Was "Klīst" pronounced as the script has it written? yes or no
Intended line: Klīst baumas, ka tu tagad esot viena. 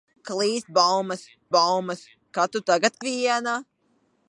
yes